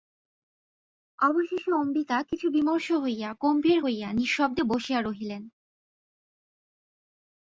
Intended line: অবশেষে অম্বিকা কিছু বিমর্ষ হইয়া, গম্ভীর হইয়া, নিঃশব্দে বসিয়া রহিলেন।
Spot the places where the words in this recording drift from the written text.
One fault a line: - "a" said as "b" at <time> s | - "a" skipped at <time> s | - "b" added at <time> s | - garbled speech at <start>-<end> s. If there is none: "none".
none